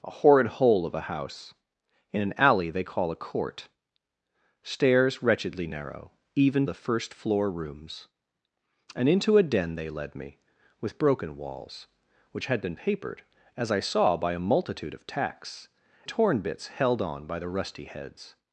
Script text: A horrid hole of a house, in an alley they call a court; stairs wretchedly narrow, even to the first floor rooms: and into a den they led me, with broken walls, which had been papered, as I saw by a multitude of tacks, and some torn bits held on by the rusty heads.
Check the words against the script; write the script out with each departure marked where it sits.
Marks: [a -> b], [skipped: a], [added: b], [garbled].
A horrid hole of a house, in an alley they call a court; stairs wretchedly narrow, even [skipped: to] the first floor rooms: and into a den they led me, with broken walls, which had been papered, as I saw by a multitude of tacks, [skipped: and some] torn bits held on by the rusty heads.